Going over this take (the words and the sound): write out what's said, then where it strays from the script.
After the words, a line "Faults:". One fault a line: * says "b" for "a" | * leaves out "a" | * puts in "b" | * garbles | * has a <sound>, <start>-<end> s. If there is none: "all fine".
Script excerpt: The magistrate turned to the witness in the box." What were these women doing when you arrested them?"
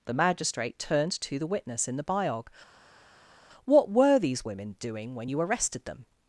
The magistrate turned to the witness in the biog." What were these women doing when you arrested them?"
Faults:
* says "biog" for "box"